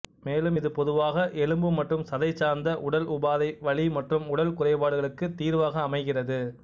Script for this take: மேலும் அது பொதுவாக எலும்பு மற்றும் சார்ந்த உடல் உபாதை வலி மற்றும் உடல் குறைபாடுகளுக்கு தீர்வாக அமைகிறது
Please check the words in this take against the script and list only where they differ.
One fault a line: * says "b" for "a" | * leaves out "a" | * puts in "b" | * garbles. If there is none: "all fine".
* says "இது" for "அது"
* puts in "சதை"